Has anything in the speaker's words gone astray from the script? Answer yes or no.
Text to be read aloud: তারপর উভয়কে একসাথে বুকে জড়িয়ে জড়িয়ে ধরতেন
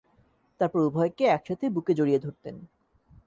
yes